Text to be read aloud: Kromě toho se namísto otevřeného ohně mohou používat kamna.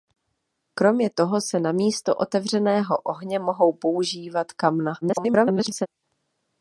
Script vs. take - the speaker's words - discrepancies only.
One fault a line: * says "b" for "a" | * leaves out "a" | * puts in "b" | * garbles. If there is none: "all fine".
* garbles